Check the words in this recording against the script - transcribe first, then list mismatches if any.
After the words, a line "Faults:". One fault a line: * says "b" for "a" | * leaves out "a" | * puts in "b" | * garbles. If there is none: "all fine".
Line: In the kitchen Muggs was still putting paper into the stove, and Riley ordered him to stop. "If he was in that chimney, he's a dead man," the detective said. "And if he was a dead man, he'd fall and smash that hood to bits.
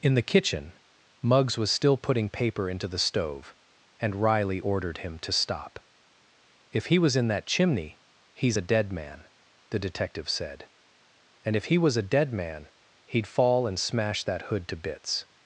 In the kitchen Muggs was still putting paper into the stove, and Riley ordered him to stop. "If he was in that chimney, he's a dead man," the detective said. "And if he was a dead man, he'd fall and smash that hood to bits.
Faults:
all fine